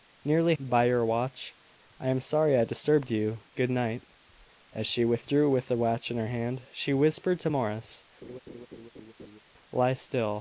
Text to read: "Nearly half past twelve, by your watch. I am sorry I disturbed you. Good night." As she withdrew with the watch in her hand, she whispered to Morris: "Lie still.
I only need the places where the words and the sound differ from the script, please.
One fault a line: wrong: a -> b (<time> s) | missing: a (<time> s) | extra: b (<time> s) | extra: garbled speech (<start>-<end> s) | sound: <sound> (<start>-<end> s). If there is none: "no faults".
missing: half past twelve (0.6 s)
sound: laugh (8.2-9.4 s)